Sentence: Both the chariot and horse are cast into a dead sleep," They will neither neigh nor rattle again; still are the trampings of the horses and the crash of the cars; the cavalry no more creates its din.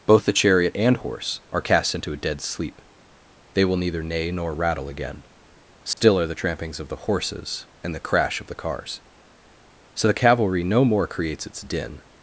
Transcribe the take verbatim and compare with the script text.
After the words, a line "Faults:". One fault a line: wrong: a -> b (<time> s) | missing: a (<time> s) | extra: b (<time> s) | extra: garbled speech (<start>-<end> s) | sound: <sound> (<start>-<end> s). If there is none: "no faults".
Both the chariot and horse are cast into a dead sleep," They will neither neigh nor rattle again; still are the trampings of the horses and the crash of the cars; so the cavalry no more creates its din.
Faults:
sound: dropout (5.9-6.0 s)
extra: so (9.9 s)